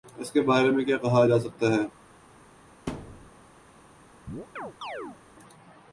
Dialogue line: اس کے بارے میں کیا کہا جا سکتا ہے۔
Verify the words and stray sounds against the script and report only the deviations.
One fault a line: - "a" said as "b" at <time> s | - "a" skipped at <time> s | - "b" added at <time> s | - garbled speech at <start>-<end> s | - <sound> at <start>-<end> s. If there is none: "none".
- thud at 2.9-3.3 s
- chirp at 4.3-5.2 s